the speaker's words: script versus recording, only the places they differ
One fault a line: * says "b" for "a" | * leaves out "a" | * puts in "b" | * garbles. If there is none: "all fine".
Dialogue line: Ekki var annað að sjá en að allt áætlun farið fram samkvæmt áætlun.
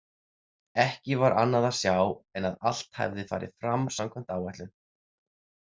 * says "hefði" for "áætlun"